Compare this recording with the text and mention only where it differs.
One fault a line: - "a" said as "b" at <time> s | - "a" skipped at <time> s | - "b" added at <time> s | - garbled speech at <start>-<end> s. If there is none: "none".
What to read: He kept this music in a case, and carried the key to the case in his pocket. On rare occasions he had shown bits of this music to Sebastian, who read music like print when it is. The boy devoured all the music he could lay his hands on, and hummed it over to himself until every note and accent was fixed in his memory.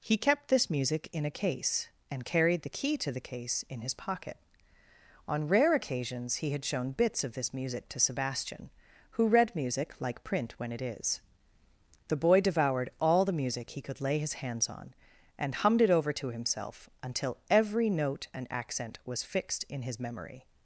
none